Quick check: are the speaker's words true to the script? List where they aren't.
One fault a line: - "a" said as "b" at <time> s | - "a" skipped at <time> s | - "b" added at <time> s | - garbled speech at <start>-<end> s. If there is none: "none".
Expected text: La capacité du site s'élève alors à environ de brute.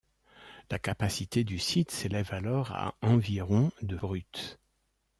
none